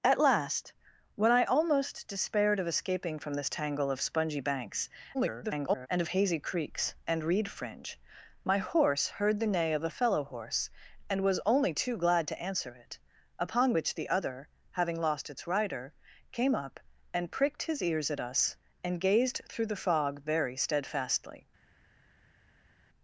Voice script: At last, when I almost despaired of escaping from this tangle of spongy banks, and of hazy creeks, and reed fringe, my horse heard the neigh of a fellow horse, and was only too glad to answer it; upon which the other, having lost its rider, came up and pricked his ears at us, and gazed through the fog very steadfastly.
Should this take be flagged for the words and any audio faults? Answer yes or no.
yes